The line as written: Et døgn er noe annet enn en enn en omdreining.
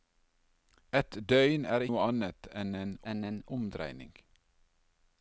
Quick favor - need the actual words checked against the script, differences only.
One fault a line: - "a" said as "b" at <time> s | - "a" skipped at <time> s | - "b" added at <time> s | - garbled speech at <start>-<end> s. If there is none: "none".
none